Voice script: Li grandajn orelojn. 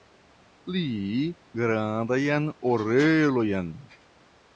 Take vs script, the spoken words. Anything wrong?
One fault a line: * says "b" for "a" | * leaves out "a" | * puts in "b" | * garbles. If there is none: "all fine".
all fine